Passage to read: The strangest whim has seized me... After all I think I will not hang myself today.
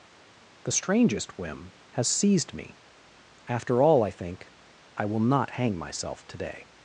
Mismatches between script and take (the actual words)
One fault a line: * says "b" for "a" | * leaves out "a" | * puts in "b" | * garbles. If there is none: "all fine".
all fine